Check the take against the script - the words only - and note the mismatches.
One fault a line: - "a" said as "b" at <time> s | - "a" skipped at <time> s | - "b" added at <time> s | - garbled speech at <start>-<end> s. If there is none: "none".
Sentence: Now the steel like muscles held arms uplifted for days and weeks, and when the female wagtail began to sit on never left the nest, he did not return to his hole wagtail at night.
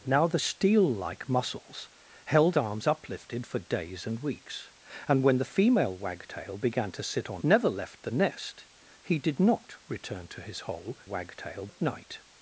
none